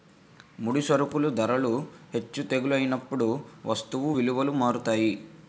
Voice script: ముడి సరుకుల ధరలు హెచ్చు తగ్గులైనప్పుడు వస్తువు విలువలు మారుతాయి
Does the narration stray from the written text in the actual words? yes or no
no